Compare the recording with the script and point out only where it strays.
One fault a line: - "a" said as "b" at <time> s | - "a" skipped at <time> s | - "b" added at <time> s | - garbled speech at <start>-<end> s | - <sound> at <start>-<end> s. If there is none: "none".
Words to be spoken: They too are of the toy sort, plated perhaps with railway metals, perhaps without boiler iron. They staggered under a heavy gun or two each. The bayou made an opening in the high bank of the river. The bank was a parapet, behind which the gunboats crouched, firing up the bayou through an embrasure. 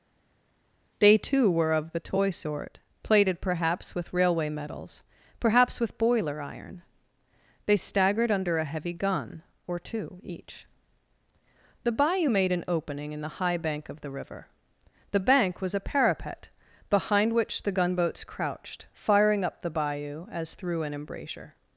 - "are" said as "were" at 1.5 s
- "without" said as "with" at 5.8 s
- "as" added at 20.3 s